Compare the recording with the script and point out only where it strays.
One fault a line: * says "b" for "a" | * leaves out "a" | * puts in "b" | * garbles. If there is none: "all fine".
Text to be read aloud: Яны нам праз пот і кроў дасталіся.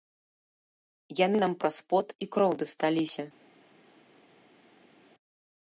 all fine